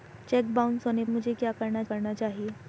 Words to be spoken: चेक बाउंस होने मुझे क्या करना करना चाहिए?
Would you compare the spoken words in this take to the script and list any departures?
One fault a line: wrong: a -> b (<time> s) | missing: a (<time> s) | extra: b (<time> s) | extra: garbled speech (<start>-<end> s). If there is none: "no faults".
no faults